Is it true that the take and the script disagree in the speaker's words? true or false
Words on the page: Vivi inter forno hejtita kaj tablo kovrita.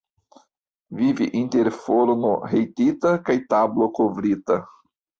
false